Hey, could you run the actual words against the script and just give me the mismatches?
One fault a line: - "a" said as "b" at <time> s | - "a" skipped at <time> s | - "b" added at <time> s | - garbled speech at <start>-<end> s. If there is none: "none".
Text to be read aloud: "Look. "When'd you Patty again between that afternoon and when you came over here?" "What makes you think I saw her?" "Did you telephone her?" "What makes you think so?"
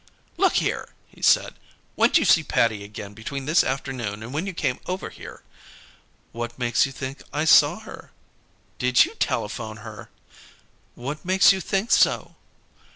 - "here he said" added at 0.5 s
- "see" added at 2.2 s
- "that" said as "this" at 3.5 s